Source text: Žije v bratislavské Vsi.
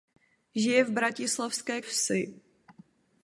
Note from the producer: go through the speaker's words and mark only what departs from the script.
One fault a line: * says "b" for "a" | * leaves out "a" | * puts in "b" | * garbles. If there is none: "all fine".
all fine